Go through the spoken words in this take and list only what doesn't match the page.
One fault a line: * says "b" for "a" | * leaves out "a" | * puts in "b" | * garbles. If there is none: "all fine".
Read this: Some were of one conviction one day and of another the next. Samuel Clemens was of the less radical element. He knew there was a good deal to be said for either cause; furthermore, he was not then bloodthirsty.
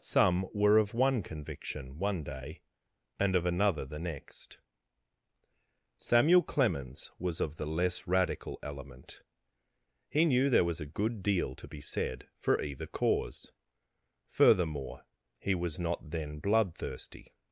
all fine